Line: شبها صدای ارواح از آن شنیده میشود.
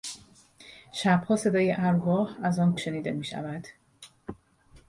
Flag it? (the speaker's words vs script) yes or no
no